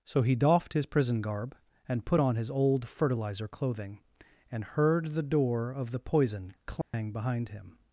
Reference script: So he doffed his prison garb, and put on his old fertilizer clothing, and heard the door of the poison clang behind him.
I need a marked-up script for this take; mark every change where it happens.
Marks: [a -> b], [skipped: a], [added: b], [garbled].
So he doffed his prison garb, and put on his old fertilizer clothing, and heard the door of the poison clang behind him.